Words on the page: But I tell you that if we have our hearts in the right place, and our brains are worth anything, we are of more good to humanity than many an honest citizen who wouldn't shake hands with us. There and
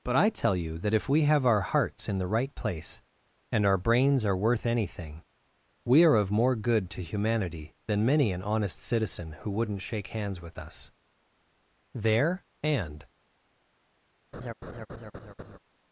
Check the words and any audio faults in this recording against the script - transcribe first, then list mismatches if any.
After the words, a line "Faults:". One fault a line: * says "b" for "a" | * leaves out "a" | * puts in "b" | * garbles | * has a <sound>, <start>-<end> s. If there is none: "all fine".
But I tell you that if we have our hearts in the right place, and our brains are worth anything, we are of more good to humanity than many an honest citizen who wouldn't shake hands with us. There and
Faults:
* has a laugh, 14.3-15.6 s